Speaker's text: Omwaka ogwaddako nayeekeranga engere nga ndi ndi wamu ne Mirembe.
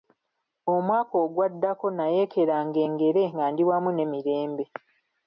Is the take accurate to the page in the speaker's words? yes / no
no